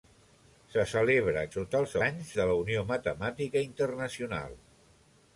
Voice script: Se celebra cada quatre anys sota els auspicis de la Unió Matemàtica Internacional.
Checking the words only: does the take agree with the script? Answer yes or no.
no